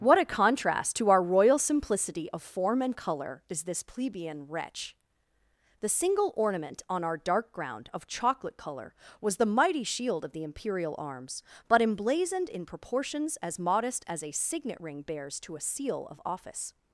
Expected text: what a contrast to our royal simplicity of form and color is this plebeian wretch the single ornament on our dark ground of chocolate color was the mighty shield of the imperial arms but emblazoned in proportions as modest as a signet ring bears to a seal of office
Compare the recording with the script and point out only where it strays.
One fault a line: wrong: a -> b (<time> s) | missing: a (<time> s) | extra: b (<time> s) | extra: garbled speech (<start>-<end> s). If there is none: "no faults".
no faults